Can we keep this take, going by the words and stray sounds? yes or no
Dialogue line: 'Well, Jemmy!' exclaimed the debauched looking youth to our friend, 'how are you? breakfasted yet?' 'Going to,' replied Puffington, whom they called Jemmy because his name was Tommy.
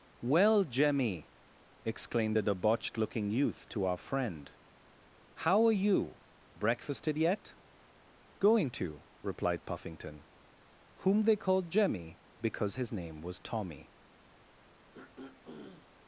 no